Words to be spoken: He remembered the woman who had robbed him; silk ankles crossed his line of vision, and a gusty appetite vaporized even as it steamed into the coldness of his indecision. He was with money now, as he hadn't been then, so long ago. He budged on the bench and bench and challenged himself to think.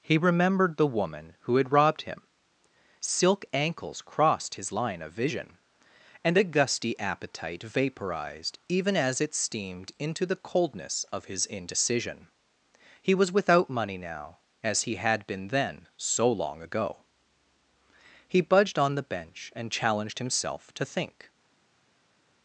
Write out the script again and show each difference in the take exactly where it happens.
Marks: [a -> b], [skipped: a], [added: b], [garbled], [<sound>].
He remembered the woman who had robbed him; silk ankles crossed his line of vision, and a gusty appetite vaporized even as it steamed into the coldness of his indecision. He was [with -> without] money now, as he [hadn't -> had] been then, so long ago. He budged on the bench and [skipped: bench and] challenged himself to think.